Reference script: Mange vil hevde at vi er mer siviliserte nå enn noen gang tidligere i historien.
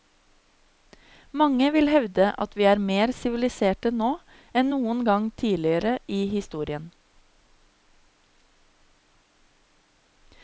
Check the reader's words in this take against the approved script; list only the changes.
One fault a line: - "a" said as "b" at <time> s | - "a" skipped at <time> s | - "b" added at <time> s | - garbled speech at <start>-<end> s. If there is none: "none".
none